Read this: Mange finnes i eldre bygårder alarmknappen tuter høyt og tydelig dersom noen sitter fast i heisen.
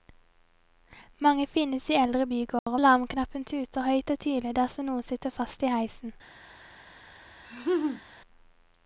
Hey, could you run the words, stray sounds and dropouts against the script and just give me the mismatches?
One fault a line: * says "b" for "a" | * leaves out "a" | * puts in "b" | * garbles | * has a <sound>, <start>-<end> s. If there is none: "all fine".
* has a dropout, 2.6-2.7 s
* has a laugh, 7.4-8.0 s